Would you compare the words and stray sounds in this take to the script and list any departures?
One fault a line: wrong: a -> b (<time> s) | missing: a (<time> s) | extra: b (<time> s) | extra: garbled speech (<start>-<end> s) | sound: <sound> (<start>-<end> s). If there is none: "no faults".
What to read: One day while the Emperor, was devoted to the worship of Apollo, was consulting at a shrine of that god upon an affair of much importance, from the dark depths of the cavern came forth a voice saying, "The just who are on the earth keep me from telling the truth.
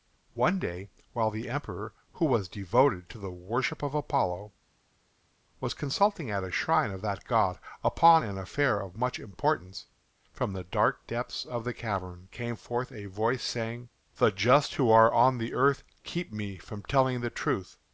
extra: who (2.1 s)